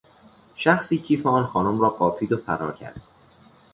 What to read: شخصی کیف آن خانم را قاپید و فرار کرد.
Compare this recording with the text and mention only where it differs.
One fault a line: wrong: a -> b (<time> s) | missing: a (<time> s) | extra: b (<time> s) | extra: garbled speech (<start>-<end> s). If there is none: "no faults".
no faults